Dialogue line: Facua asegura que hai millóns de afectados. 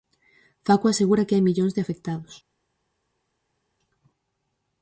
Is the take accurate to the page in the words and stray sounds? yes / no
yes